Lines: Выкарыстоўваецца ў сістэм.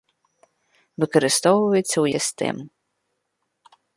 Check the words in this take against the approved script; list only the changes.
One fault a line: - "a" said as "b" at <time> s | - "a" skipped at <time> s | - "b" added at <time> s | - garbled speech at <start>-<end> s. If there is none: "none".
none